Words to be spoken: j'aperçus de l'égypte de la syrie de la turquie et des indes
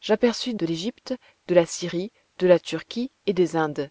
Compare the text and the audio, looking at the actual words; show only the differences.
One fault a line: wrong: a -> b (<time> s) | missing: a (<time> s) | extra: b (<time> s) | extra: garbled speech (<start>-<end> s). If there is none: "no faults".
no faults